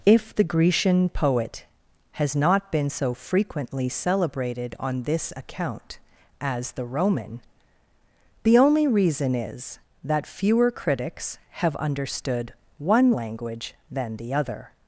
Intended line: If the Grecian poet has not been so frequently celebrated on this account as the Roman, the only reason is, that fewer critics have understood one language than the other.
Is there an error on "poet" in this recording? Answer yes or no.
no